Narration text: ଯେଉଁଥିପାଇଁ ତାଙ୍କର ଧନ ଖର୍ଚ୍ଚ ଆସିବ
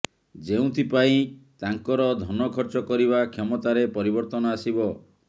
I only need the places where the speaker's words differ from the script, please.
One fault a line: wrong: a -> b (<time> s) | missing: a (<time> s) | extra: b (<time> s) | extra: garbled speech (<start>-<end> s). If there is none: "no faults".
extra: କରିବା କ୍ଷମତାରେ ପରିବର୍ତ୍ତନ (2.9 s)